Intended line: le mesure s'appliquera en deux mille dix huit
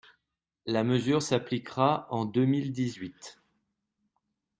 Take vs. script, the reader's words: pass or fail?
fail